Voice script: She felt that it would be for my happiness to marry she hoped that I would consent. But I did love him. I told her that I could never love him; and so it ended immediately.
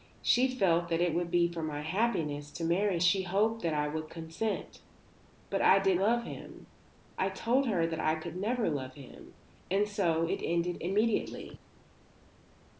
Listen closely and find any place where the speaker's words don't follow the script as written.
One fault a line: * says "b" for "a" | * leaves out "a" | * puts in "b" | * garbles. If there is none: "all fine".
all fine